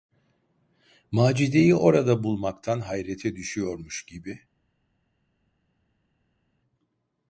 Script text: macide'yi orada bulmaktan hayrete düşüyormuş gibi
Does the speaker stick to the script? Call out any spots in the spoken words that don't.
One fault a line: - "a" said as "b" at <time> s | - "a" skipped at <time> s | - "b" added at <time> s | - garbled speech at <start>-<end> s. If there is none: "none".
none